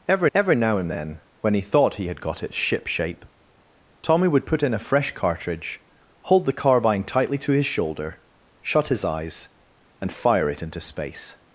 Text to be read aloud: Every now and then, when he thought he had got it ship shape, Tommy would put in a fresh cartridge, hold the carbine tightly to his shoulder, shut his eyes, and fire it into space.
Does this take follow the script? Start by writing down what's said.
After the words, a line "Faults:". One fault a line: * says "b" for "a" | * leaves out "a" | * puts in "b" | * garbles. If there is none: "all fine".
Every every now and then, when he thought he had got it ship shape, Tommy would put in a fresh cartridge, hold the carbine tightly to his shoulder, shut his eyes, and fire it into space.
Faults:
* puts in "every"